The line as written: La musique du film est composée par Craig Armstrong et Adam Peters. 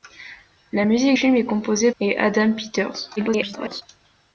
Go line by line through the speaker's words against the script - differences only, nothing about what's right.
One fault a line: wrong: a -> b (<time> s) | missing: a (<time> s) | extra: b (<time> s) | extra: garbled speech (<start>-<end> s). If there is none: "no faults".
missing: du (1.2 s)
missing: par Craig Armstrong (1.9 s)
extra: garbled speech (3.2-3.8 s)